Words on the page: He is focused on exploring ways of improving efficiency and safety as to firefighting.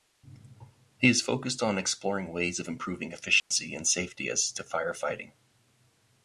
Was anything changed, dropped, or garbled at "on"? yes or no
no